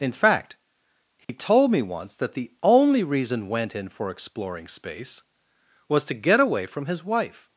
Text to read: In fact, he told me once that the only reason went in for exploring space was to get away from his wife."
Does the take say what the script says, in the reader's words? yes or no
yes